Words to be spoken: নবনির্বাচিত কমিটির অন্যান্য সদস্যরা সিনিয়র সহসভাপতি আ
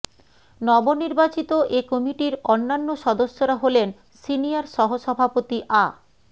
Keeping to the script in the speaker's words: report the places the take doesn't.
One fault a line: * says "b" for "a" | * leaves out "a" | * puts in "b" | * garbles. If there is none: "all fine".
* puts in "এ"
* puts in "হলেন"